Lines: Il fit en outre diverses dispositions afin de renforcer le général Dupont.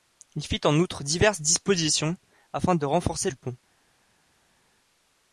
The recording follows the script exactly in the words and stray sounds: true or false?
false